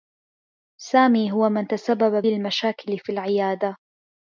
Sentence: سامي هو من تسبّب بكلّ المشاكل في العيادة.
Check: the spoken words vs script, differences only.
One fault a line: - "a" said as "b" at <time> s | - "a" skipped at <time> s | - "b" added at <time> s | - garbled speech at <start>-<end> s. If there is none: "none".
- "بكلّ" skipped at 2.2 s